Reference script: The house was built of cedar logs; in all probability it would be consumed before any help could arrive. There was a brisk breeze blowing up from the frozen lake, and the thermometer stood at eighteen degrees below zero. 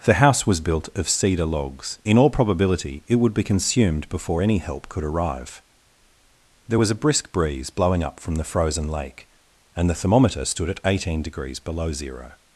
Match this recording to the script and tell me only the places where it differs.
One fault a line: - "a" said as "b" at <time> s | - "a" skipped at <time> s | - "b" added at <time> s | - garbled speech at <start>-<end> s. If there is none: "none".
none